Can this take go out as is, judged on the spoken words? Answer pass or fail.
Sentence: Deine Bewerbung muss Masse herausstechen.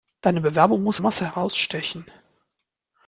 pass